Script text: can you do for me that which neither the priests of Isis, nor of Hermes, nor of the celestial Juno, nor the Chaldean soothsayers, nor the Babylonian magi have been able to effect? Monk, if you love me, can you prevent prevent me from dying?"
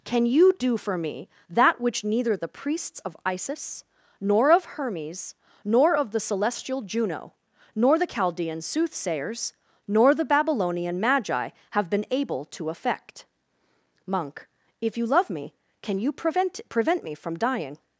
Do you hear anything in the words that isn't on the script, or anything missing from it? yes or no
no